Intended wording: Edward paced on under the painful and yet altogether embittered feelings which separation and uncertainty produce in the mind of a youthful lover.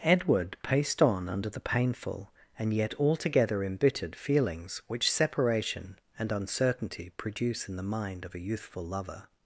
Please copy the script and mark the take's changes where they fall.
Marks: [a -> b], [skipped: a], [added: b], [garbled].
Edward paced on under the painful and yet altogether embittered feelings which separation and uncertainty produce in the mind of a youthful lover.